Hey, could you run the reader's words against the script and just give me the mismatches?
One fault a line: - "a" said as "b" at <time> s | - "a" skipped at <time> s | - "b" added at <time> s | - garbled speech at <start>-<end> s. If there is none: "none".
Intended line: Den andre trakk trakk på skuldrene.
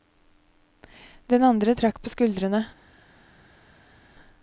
- "trakk" skipped at 2.0 s